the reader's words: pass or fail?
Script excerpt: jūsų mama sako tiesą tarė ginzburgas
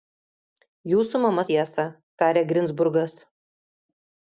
fail